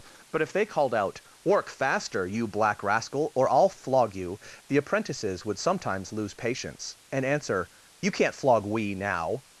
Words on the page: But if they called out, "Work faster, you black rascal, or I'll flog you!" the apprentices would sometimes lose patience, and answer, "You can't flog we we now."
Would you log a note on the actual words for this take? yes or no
yes